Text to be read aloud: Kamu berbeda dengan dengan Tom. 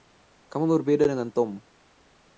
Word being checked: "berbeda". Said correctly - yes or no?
yes